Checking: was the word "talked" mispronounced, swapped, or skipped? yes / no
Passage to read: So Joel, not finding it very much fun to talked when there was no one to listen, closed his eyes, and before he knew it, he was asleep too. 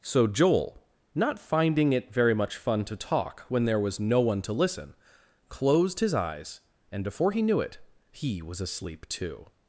yes